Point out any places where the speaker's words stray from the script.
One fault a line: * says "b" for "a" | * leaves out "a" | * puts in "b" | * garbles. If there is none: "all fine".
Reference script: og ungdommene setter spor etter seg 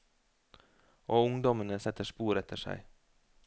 all fine